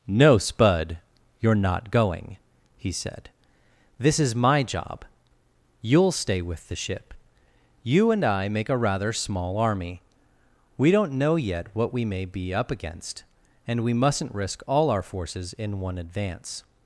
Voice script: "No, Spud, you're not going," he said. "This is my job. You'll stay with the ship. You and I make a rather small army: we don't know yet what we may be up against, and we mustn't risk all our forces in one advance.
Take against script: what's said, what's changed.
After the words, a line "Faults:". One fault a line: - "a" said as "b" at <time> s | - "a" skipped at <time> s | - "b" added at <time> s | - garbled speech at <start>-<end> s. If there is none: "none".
"No, Spud, you're not going," he said. "This is my job. You'll stay with the ship. You and I make a rather small army: we don't know yet what we may be up against, and we mustn't risk all our forces in one advance.
Faults:
none